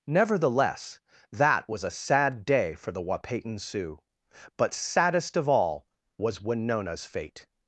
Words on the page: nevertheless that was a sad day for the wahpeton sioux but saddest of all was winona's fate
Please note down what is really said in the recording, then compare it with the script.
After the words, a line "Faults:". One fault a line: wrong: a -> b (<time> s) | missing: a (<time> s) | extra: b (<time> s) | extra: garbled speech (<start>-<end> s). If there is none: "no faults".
nevertheless that was a sad day for the wahpeton sioux but saddest of all was winona's fate
Faults:
no faults